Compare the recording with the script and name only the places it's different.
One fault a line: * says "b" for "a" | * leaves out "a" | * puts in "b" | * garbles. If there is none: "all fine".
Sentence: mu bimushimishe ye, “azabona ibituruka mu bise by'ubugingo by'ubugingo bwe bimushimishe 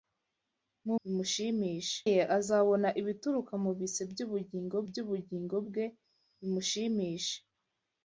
all fine